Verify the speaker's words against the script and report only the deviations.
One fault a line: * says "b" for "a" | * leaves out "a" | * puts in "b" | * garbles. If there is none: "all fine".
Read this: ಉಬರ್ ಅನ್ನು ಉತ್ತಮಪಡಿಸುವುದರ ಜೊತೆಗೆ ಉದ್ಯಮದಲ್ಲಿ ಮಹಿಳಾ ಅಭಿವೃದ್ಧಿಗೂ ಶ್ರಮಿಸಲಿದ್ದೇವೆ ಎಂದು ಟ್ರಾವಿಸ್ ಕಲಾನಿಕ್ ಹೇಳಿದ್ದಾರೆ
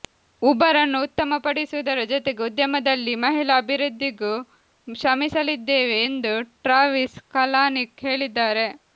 all fine